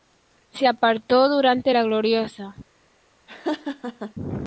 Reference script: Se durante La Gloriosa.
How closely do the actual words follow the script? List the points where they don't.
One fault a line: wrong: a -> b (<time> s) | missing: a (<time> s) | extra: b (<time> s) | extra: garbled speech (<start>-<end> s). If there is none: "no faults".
extra: apartó (0.7 s)